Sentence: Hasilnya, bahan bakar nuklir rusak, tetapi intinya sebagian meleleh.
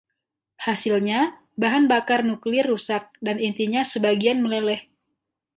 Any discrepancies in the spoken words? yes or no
yes